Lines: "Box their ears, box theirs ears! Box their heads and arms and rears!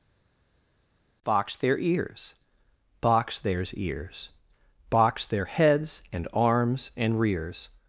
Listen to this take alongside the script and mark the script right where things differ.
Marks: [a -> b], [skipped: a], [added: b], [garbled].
"Box their ears, box theirs ears! Box their heads and arms and rears!